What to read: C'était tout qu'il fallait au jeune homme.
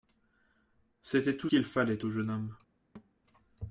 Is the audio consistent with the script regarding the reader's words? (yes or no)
yes